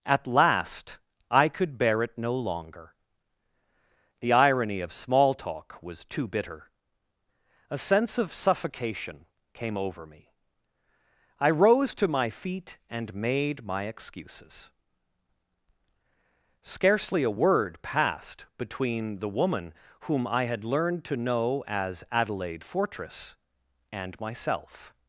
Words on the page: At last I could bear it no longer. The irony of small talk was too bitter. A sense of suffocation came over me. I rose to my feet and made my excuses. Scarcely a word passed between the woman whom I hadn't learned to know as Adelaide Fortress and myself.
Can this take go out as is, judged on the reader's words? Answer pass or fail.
fail